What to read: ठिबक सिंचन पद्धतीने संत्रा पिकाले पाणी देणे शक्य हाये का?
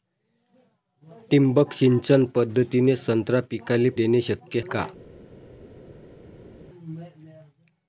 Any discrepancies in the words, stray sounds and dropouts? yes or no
yes